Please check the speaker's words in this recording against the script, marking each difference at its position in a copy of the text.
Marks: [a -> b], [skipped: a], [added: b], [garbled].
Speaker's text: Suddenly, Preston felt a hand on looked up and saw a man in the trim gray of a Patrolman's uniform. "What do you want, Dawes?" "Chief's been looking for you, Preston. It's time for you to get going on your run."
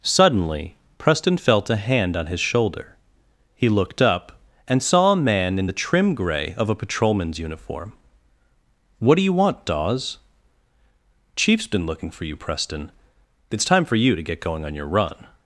Suddenly, Preston felt a hand on [added: his shoulder He] looked up and saw a man in the trim gray of a Patrolman's uniform. "What do you want, Dawes?" "Chief's been looking for you, Preston. It's time for you to get going on your run."